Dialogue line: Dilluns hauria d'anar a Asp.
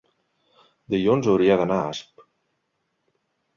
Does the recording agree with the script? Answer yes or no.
yes